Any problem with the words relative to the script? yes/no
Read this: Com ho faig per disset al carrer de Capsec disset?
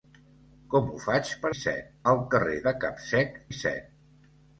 no